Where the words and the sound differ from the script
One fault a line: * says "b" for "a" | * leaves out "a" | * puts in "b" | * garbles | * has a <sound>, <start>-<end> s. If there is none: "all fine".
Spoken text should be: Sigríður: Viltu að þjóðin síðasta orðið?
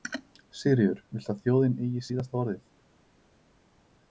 * puts in "eigi"